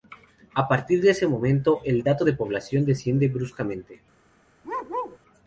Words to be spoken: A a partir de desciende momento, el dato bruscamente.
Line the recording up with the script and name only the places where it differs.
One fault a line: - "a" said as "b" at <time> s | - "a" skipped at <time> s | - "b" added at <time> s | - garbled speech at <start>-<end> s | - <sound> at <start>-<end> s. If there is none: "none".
- "a" skipped at 0.7 s
- "desciende" said as "ese" at 1.1 s
- "de población desciende" added at 2.2 s
- bark at 4.6-5.2 s